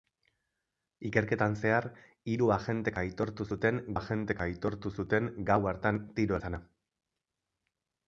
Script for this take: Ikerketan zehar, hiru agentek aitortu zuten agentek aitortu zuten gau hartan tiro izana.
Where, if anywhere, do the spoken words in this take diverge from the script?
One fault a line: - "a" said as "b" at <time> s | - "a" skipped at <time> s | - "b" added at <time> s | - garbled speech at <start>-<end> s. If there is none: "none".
none